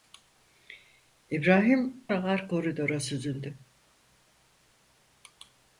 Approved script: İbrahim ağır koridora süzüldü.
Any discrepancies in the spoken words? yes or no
no